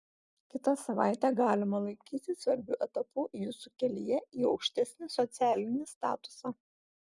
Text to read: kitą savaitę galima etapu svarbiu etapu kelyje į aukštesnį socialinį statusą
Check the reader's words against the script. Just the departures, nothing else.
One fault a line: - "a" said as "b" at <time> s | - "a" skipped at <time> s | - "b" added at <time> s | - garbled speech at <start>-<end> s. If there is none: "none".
- "etapu" said as "laikyti" at 1.8 s
- "jūsų" added at 3.4 s